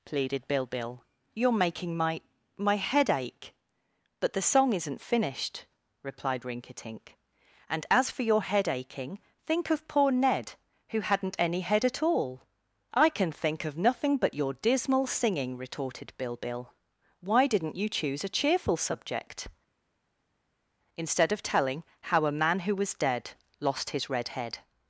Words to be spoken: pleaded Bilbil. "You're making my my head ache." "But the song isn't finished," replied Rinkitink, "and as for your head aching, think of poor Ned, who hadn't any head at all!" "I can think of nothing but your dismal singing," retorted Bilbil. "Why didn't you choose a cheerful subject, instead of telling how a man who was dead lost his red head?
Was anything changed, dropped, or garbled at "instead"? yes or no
no